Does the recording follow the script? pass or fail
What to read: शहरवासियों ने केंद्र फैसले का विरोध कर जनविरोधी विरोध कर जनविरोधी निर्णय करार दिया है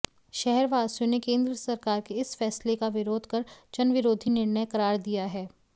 fail